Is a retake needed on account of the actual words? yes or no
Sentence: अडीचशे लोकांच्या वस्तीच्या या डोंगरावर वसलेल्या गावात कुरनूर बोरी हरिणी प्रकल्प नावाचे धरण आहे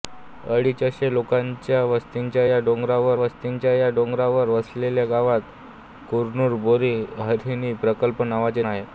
yes